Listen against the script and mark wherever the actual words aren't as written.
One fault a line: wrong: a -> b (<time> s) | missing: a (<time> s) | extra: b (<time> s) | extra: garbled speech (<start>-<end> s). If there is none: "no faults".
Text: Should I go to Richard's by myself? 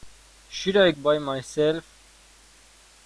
missing: go to Richard's (0.9 s)